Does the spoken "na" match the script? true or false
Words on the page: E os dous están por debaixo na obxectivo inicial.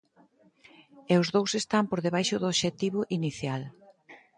false